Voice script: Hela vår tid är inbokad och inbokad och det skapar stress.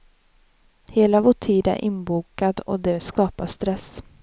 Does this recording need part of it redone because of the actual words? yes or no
yes